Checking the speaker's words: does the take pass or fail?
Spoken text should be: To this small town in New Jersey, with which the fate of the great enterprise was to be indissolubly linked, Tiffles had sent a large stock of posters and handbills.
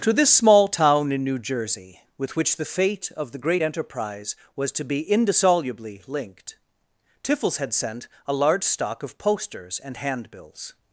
pass